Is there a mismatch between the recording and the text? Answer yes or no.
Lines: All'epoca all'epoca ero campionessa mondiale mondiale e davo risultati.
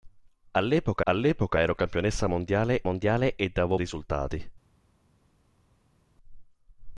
no